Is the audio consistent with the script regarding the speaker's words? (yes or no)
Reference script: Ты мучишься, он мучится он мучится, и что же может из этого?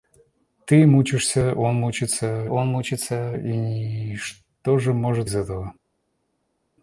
yes